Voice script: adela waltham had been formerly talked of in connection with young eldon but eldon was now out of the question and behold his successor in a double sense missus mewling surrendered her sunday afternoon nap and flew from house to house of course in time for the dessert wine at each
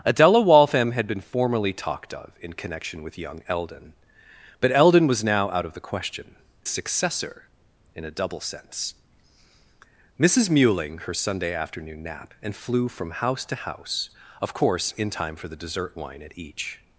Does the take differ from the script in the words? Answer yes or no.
yes